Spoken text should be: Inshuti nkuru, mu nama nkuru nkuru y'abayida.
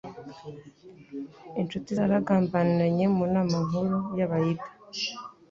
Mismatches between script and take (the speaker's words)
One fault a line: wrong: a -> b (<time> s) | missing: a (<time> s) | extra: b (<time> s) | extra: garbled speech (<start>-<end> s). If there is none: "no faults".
wrong: nkuru -> zaragambaniranye (1.9 s)
missing: nkuru (4.0 s)